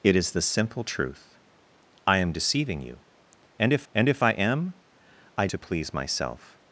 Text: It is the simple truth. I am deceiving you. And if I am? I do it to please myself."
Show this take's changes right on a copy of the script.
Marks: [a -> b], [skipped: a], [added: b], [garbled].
It is the simple truth. I am deceiving you. And if [added: and if] I am? I [skipped: do it] to please myself."